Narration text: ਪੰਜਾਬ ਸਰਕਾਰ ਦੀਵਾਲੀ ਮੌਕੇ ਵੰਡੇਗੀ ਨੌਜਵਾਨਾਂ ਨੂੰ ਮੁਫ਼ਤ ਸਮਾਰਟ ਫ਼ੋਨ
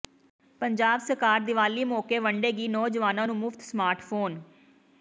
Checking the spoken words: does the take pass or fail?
pass